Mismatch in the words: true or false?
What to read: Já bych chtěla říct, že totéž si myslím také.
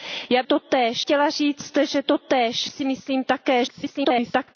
true